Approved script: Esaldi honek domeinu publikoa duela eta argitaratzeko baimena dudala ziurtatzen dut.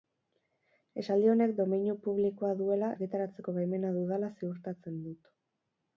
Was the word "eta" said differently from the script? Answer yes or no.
yes